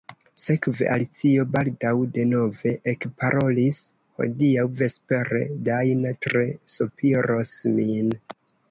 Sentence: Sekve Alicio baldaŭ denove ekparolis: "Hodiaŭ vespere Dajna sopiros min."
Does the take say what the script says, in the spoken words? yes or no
no